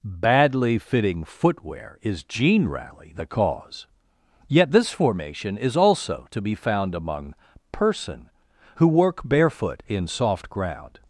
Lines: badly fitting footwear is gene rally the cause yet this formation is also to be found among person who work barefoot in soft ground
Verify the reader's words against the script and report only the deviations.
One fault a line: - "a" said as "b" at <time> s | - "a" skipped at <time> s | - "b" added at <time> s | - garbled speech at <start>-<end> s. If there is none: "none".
none